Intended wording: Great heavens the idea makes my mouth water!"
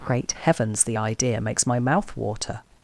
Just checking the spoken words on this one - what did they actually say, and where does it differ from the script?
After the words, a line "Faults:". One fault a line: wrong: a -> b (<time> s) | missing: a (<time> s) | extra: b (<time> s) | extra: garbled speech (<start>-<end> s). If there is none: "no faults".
Great heavens the idea makes my mouth water!"
Faults:
no faults